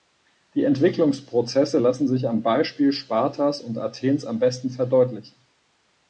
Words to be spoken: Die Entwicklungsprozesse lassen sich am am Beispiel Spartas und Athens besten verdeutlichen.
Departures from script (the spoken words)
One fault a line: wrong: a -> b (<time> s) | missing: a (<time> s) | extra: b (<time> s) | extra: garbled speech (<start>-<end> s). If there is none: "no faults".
missing: am (2.4 s)
extra: am (4.2 s)